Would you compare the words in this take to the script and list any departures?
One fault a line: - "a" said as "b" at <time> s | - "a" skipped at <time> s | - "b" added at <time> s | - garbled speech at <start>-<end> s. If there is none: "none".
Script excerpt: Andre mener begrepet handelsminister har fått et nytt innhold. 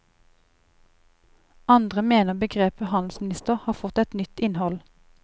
none